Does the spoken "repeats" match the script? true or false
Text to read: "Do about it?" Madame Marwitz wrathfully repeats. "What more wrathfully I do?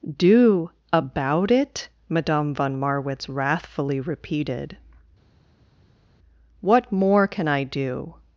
false